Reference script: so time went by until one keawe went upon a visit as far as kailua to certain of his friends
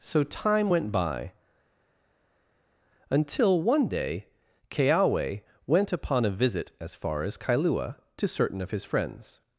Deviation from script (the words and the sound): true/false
true